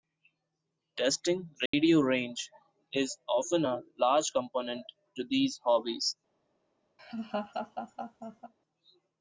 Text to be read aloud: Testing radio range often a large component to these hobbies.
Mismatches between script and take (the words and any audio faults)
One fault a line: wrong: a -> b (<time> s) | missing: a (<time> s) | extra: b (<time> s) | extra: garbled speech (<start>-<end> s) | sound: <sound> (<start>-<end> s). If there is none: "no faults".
sound: dropout (1.7-1.7 s)
extra: is (2.9 s)
sound: laugh (7.0-8.5 s)